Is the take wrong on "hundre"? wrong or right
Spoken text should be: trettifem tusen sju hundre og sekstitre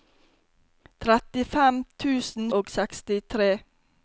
wrong